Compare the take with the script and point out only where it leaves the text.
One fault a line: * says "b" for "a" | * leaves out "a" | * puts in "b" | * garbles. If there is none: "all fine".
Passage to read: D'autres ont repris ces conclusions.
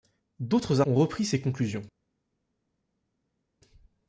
all fine